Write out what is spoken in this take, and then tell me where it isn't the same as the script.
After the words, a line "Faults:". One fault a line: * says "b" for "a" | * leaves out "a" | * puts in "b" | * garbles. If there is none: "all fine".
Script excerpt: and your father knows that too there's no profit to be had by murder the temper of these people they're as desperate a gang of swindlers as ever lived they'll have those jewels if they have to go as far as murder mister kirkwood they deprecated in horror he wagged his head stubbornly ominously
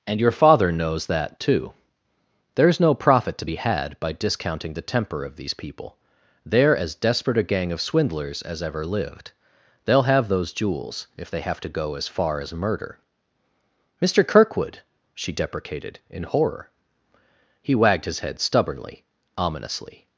and your father knows that too there's no profit to be had by discounting the temper of these people they're as desperate a gang of swindlers as ever lived they'll have those jewels if they have to go as far as murder mister kirkwood she deprecated in horror he wagged his head stubbornly ominously
Faults:
* says "discounting" for "murder"
* says "she" for "they"